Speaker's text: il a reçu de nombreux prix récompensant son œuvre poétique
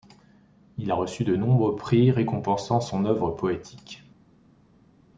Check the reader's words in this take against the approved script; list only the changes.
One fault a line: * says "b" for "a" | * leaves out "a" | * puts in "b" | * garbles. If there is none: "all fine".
all fine